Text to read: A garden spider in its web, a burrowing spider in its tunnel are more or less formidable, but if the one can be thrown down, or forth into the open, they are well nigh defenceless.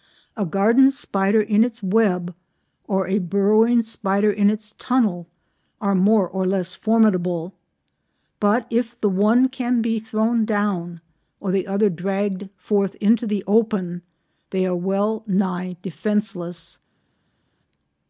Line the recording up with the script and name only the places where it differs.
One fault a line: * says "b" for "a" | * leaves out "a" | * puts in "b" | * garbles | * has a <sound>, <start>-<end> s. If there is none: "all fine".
* puts in "or"
* puts in "the other dragged"